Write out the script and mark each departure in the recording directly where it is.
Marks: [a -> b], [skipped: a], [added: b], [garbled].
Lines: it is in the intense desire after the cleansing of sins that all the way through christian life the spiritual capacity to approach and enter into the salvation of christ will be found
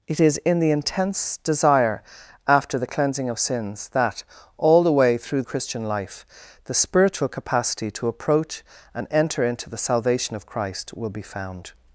it is in the intense desire after the cleansing of sins that all the way through christian life the spiritual capacity to approach and enter into the salvation of christ will be found